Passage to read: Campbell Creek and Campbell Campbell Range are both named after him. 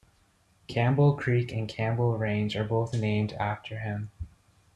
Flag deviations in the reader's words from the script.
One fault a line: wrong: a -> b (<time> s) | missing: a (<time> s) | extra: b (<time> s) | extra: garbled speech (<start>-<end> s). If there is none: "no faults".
missing: Campbell (2.2 s)